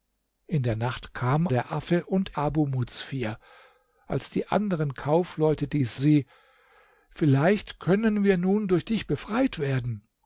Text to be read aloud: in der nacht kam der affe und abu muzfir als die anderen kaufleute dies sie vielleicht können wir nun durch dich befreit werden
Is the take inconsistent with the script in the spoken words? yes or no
no